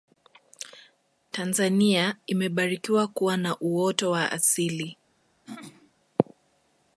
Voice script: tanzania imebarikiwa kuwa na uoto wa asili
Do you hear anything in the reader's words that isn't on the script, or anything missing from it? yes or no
no